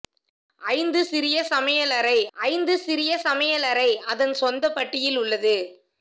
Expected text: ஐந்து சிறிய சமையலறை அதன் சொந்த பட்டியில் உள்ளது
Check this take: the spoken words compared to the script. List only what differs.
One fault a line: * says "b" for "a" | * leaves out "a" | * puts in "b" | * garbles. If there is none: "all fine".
* puts in "ஐந்து சிறிய சமையலறை"